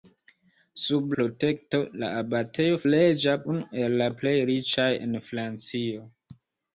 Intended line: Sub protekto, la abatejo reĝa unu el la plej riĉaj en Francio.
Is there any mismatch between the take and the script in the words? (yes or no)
no